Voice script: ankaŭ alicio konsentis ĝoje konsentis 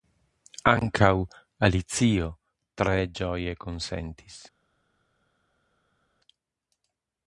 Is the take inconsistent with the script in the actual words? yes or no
yes